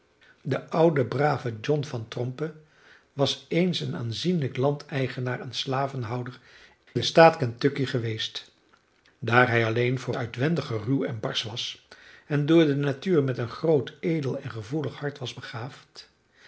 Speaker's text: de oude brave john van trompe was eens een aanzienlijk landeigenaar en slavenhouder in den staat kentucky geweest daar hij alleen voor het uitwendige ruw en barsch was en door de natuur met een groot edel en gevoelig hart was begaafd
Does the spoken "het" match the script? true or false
false